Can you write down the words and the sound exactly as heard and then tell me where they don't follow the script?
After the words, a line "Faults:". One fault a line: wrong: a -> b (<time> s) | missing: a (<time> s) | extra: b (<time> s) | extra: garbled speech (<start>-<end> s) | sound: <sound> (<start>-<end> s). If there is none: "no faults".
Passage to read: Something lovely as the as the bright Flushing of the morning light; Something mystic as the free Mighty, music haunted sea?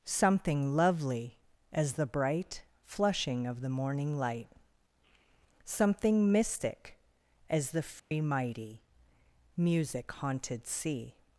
Something lovely as the bright Flushing of the morning light; Something mystic as the free Mighty, music haunted sea?
Faults:
missing: as the (2.1 s)
sound: dropout (8.0-8.1 s)